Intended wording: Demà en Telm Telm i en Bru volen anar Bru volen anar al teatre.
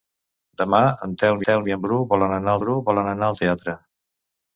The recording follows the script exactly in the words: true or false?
true